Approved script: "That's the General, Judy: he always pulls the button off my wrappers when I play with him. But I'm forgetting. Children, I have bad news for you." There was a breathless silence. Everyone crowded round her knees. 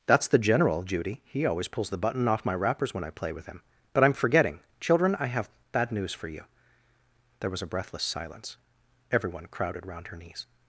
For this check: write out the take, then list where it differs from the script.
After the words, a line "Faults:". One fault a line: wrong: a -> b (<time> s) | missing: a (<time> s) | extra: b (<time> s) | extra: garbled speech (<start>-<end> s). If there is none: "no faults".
"That's the General, Judy: he always pulls the button off my wrappers when I play with him. But I'm forgetting. Children, I have bad news for you." There was a breathless silence. Everyone crowded round her knees.
Faults:
no faults